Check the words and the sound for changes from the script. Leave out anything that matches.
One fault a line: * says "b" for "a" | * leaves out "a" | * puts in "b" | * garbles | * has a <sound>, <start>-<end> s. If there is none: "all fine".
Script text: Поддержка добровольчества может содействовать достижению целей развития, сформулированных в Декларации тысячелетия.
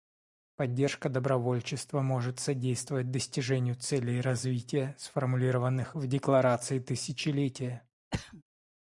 * has a throat clearing, 8.1-8.4 s